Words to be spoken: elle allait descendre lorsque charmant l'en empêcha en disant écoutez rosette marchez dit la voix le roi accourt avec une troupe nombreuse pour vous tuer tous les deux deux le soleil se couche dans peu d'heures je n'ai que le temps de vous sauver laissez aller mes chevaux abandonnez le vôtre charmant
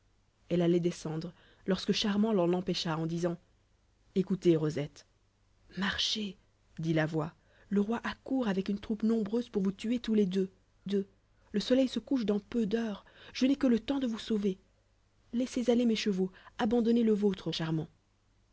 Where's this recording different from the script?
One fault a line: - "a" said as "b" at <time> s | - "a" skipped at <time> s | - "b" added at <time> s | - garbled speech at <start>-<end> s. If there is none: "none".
none